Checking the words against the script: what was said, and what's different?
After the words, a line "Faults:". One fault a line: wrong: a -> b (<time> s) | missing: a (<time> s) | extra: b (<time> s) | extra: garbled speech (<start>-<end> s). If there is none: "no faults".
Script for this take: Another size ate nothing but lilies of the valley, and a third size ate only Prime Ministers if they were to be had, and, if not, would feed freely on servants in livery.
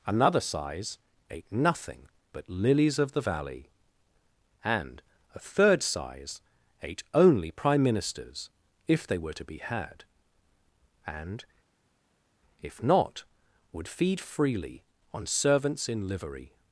Another size ate nothing but lilies of the valley, and a third size ate only Prime Ministers if they were to be had, and, if not, would feed freely on servants in livery.
Faults:
no faults